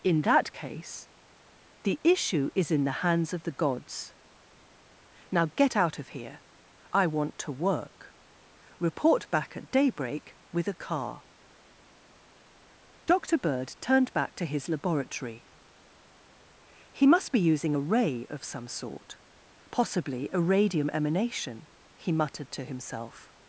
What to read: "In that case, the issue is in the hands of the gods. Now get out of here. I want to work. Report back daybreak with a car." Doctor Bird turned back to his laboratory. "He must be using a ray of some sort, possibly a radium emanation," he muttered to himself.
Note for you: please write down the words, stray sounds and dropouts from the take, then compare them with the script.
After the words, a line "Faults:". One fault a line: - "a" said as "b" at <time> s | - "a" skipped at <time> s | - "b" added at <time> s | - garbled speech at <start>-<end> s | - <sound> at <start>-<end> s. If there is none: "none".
"In that case, the issue is in the hands of the gods. Now get out of here. I want to work. Report back at daybreak with a car." Doctor Bird turned back to his laboratory. "He must be using a ray of some sort, possibly a radium emanation," he muttered to himself.
Faults:
- "at" added at 9.6 s